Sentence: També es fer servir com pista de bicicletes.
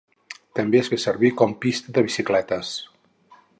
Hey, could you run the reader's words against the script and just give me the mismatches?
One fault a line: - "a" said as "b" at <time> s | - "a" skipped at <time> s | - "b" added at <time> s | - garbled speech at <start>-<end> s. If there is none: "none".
none